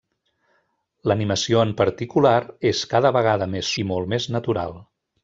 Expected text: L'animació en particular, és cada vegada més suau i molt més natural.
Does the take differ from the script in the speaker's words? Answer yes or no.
yes